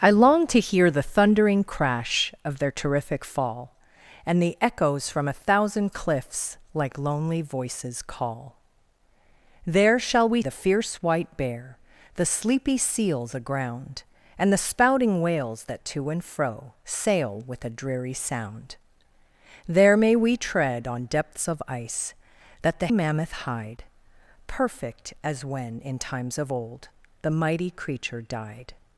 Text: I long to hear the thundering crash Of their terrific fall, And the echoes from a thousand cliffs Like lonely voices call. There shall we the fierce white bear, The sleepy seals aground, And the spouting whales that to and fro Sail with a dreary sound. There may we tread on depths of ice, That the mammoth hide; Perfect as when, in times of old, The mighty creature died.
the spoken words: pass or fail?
pass